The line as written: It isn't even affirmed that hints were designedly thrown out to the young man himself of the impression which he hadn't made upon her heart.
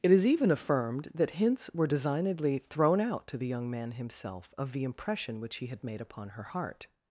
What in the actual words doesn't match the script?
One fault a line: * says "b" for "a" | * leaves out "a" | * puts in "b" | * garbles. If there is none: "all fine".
* says "is" for "isn't"
* says "had" for "hadn't"